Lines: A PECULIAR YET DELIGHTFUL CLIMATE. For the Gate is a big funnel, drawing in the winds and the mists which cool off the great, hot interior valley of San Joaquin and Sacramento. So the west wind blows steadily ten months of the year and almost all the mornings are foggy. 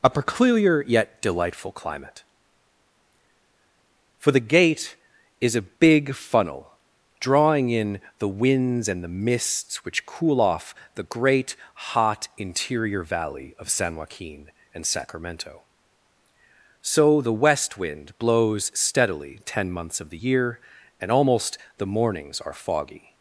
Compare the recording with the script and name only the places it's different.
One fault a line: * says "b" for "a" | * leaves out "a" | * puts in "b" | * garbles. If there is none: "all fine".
* leaves out "all"